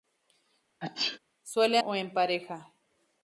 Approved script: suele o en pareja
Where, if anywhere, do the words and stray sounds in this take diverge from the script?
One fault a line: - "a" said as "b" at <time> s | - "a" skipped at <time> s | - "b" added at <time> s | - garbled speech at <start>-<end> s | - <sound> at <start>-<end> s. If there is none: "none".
- sneeze at 0.8-1.2 s